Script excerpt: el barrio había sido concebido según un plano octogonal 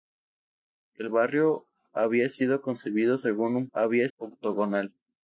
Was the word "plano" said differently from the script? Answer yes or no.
yes